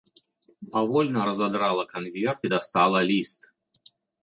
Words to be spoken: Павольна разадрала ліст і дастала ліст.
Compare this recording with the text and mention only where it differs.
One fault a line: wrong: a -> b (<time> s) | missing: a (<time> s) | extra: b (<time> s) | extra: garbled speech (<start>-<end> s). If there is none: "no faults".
wrong: ліст -> канверт (1.8 s)